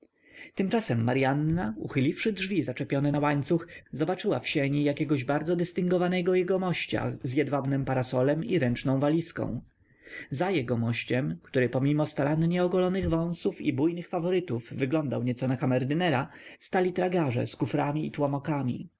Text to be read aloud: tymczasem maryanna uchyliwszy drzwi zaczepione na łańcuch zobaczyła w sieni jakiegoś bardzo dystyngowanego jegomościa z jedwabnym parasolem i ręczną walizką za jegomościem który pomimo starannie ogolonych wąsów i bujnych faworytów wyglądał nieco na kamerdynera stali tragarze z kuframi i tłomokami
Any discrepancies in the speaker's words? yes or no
no